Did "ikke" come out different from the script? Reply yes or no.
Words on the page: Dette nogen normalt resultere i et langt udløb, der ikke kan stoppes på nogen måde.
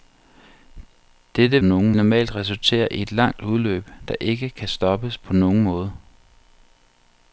no